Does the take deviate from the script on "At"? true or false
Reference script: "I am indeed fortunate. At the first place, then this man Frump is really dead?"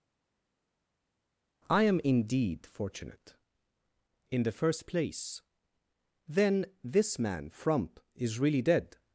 true